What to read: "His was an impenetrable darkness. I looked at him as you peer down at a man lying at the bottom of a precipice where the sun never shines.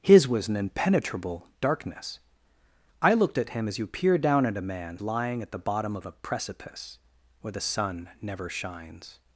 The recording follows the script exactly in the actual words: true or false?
true